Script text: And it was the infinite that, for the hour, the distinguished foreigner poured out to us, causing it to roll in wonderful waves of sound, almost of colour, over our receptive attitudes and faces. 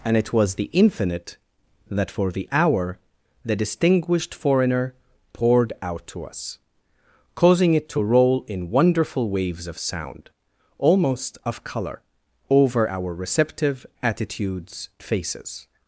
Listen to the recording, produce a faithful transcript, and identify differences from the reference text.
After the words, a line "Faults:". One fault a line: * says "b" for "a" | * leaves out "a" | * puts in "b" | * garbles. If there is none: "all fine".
And it was the infinite that, for the hour, the distinguished foreigner poured out to us, causing it to roll in wonderful waves of sound, almost of colour, over our receptive attitudes faces.
Faults:
* leaves out "and"